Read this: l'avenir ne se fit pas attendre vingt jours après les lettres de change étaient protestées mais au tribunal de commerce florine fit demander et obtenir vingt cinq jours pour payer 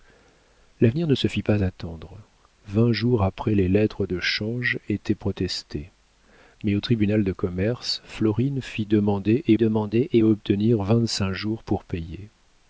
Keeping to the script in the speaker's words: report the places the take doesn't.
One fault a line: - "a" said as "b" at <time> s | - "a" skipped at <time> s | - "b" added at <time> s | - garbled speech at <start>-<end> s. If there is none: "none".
- "demander et" added at 9.6 s